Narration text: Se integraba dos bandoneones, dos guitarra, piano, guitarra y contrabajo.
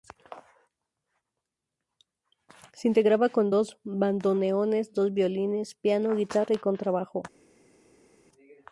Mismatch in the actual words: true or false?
true